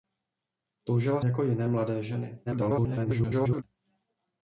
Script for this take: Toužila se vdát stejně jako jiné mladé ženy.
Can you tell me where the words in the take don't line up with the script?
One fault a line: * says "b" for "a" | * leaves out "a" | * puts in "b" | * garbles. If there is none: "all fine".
* leaves out "se vdát stejně"
* garbles